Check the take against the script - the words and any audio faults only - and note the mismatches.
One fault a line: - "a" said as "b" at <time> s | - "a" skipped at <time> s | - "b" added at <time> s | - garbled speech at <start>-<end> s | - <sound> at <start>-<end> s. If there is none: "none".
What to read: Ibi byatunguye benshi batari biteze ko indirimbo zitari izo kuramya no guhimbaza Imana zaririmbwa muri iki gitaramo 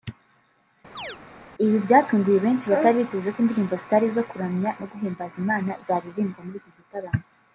- chirp at 1.0-1.2 s